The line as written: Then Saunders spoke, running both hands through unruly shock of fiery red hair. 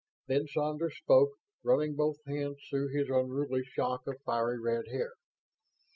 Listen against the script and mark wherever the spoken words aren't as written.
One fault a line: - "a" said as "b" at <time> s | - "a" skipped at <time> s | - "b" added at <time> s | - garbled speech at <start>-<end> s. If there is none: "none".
- "his" added at 2.9 s